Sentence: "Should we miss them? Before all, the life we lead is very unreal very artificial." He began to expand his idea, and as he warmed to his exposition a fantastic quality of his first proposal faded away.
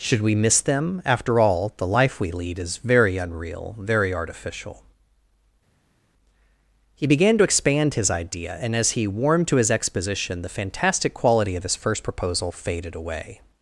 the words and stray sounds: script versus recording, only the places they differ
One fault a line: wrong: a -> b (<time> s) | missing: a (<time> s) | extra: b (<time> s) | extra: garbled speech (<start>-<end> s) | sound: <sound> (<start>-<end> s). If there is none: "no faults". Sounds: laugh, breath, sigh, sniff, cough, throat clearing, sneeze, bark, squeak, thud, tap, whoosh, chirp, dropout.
wrong: Before -> After (1.1 s)
wrong: a -> the (10.4 s)